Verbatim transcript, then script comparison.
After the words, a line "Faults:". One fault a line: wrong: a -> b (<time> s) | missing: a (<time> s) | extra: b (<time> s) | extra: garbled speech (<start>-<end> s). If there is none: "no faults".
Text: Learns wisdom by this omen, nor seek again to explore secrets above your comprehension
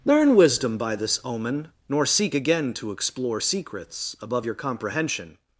Learn wisdom by this omen, nor seek again to explore secrets above your comprehension
Faults:
wrong: Learns -> Learn (0.0 s)